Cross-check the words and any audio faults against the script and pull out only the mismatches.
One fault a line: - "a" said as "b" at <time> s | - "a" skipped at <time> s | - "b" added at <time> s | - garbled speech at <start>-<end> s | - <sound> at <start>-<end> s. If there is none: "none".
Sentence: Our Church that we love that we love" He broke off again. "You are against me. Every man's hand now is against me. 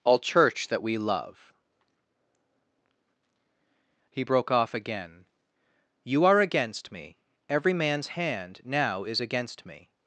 - "Our" said as "All" at 0.0 s
- "that we love" skipped at 1.5 s